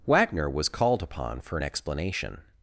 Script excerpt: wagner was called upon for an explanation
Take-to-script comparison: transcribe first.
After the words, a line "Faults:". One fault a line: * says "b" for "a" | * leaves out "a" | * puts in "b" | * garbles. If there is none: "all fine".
wagner was called upon for an explanation
Faults:
all fine